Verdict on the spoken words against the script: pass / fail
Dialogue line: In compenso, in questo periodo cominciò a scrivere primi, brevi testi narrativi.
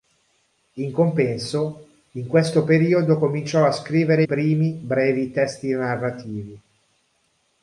pass